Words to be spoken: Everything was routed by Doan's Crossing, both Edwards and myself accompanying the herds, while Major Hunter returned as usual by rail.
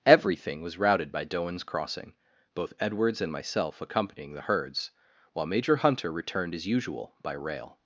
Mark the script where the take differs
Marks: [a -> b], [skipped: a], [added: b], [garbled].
Everything was routed by Doan's Crossing, both Edwards and myself accompanying the herds, while Major Hunter returned as usual by rail.